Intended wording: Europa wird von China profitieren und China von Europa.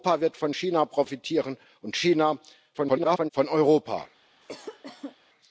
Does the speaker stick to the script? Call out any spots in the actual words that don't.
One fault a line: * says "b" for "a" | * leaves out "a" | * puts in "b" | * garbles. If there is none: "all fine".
* garbles